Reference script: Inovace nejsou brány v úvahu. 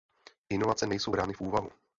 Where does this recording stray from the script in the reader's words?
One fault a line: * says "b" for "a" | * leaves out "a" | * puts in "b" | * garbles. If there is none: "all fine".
all fine